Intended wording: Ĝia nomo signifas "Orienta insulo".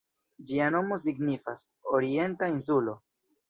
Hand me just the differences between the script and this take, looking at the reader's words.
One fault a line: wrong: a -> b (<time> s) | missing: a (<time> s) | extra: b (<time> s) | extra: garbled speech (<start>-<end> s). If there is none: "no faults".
no faults